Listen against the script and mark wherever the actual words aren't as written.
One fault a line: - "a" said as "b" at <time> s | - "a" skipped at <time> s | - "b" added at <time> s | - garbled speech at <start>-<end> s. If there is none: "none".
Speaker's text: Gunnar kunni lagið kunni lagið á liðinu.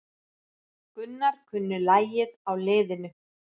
- "kunni lagið" skipped at 2.4 s